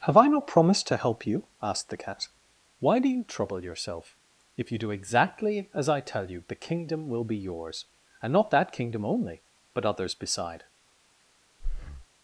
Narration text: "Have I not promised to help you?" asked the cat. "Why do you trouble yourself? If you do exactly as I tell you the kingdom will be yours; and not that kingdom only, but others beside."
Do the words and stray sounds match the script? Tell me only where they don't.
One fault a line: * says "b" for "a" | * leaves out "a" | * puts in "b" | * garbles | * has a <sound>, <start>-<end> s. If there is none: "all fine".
* has a breath, 11.6-12.1 s